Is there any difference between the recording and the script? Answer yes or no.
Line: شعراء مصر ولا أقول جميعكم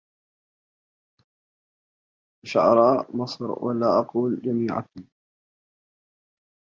no